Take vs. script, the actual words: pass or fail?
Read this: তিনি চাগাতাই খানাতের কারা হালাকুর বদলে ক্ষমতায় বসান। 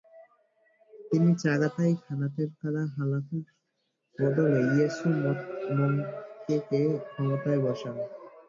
fail